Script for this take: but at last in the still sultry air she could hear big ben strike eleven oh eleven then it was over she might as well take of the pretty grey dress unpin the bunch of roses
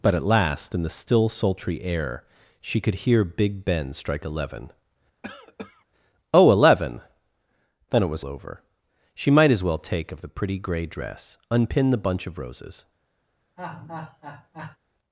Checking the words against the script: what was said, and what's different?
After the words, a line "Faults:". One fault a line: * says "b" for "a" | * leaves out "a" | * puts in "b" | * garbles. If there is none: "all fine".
but at last in the still sultry air she could hear big ben strike eleven oh eleven then it was over she might as well take of the pretty grey dress unpin the bunch of roses
Faults:
all fine